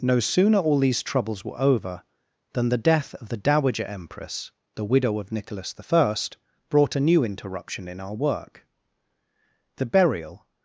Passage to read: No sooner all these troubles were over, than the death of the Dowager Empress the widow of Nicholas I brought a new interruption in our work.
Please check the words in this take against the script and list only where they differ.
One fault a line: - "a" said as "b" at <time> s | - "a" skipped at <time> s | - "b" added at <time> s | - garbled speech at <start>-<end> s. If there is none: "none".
- "The burial" added at 9.8 s